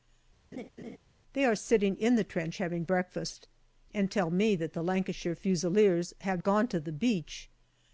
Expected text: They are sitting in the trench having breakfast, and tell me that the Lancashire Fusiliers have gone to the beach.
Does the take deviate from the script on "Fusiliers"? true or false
false